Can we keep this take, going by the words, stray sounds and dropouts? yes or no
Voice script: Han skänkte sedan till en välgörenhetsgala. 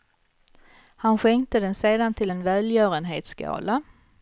no